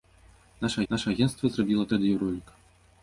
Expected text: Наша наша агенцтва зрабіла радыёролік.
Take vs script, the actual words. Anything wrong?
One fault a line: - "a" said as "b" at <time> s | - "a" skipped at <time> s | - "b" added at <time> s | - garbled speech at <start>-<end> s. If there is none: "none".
none